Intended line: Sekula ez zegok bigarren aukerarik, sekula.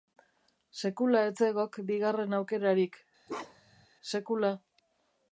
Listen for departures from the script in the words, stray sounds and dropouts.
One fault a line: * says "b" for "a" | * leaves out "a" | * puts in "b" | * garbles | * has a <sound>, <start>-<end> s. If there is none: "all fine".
* has a bark, 3.3-3.9 s